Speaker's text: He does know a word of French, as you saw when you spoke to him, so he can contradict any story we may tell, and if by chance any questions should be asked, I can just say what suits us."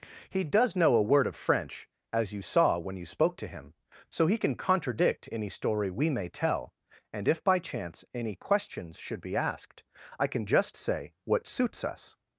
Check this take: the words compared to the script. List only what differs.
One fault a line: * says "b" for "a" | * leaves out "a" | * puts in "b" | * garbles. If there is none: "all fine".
all fine